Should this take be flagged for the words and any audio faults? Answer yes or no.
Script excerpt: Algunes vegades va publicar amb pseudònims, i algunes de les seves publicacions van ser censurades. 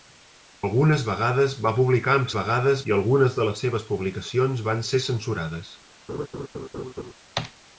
yes